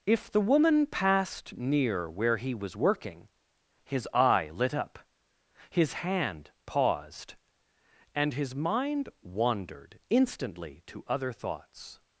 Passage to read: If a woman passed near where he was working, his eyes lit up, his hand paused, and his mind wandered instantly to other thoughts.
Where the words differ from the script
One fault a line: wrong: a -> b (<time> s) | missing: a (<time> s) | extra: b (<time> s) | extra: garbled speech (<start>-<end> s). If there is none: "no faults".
wrong: a -> the (0.3 s)
wrong: eyes -> eye (4.1 s)